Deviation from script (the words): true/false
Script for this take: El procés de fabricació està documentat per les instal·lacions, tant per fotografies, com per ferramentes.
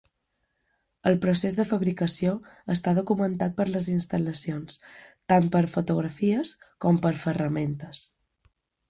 false